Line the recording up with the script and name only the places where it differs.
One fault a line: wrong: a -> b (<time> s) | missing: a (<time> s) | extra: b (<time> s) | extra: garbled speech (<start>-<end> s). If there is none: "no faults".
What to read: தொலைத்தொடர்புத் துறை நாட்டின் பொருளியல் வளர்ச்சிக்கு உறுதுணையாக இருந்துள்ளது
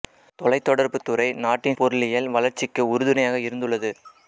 no faults